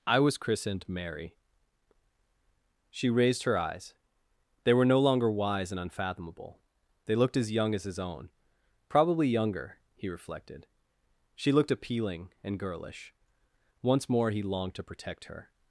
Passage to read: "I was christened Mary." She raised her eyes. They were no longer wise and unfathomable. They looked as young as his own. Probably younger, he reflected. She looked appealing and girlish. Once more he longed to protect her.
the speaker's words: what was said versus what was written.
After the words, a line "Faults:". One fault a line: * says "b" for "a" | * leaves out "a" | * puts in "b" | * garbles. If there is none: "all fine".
"I was christened Mary." She raised her eyes. They were no longer wise and unfathomable. They looked as young as his own. Probably younger, he reflected. She looked appealing and girlish. Once more he longed to protect her.
Faults:
all fine